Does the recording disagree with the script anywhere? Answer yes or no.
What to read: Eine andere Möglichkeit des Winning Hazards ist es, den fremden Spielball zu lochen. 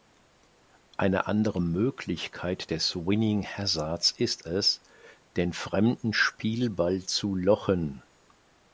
no